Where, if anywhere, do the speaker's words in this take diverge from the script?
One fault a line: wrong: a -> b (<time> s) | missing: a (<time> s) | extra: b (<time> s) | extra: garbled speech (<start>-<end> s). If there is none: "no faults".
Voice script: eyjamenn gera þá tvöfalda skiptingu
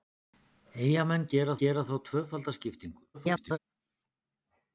extra: gera (1.6 s)
extra: garbled speech (3.1-3.6 s)